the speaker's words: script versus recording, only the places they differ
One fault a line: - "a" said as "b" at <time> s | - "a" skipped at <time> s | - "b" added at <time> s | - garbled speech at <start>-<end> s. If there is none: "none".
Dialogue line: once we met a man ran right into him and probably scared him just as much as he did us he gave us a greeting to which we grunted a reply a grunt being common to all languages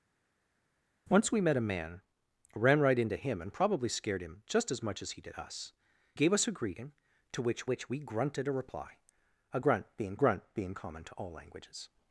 - "he" skipped at 5.7 s
- "which" added at 7.7 s
- "grunt being" added at 10.1 s